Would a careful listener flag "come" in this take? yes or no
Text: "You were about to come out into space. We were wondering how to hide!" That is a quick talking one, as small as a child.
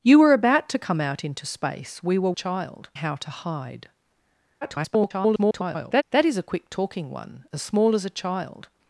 no